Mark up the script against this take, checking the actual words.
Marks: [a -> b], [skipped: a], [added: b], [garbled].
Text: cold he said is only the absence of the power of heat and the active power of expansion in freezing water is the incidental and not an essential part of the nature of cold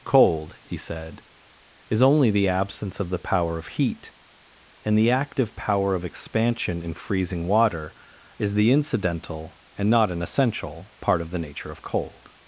cold he said is only the absence of the power of heat and the active power of expansion in freezing water is the incidental and not an essential part of the nature of cold